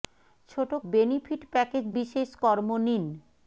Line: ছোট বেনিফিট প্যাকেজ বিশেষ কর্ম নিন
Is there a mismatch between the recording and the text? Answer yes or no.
no